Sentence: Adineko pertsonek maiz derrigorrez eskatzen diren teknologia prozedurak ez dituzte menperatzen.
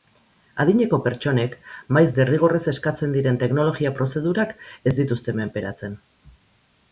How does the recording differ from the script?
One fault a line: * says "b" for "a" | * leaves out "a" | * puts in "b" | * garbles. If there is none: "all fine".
all fine